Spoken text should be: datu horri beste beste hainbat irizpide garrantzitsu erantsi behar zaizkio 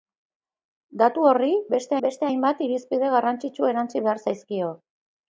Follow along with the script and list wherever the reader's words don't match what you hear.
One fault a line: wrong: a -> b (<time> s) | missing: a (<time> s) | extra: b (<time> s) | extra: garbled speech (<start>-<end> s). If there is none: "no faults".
no faults